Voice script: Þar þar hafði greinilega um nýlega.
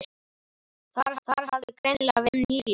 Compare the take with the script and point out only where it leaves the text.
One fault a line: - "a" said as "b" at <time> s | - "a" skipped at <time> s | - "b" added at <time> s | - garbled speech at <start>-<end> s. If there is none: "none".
none